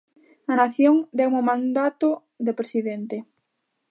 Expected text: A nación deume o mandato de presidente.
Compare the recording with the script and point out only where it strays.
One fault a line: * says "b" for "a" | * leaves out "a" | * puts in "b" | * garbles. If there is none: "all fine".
all fine